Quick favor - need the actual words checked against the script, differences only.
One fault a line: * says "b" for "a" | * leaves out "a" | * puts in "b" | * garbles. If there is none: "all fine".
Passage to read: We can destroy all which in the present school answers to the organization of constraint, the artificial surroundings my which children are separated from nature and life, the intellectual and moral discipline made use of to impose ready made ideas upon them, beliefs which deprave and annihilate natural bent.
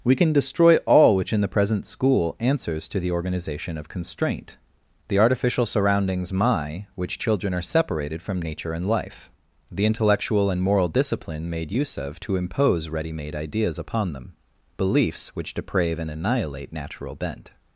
all fine